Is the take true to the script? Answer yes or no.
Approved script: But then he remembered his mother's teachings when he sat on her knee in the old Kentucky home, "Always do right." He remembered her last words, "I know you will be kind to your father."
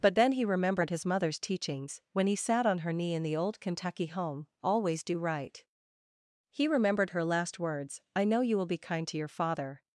yes